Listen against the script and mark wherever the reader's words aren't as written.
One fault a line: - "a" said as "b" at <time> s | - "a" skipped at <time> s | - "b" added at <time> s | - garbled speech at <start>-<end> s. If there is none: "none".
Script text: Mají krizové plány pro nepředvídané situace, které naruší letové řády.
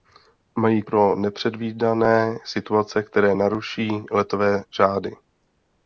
- "krizové plány" skipped at 0.8 s